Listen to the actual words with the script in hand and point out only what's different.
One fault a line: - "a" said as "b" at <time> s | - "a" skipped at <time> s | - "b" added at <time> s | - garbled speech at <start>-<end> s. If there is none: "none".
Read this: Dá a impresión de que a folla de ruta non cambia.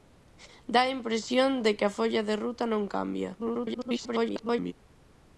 - garbled speech at 3.4-4.7 s